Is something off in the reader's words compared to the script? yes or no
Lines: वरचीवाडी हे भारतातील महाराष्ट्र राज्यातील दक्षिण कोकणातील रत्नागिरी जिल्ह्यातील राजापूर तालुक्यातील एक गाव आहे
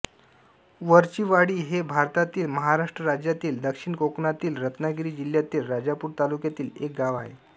no